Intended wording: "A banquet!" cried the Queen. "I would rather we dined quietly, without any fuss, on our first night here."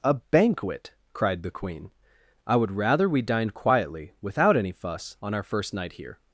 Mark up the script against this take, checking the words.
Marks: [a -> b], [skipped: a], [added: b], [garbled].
"A banquet!" cried the Queen. "I would rather we dined quietly, without any fuss, on our first night here."